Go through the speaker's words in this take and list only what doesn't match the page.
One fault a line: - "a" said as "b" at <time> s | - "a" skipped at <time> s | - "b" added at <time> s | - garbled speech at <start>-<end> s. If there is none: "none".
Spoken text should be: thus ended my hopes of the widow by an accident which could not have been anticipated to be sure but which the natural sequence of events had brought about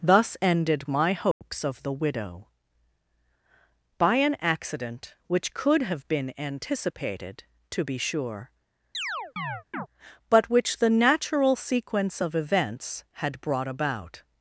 - "not" skipped at 5.8 s